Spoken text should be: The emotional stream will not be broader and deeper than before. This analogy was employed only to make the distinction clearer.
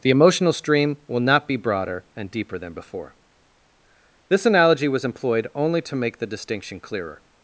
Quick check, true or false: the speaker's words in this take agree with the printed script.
true